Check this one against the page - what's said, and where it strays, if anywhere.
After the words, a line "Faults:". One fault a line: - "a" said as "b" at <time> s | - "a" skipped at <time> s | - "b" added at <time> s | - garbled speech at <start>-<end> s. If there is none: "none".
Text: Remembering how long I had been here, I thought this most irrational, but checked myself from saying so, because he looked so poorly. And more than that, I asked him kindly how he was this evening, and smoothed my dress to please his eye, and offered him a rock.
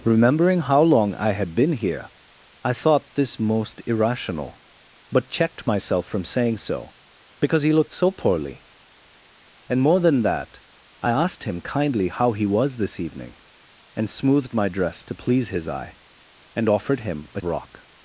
Remembering how long I had been here, I thought this most irrational, but checked myself from saying so, because he looked so poorly. And more than that, I asked him kindly how he was this evening, and smoothed my dress to please his eye, and offered him a rock.
Faults:
none